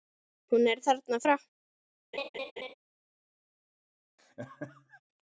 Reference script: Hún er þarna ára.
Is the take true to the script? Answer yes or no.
yes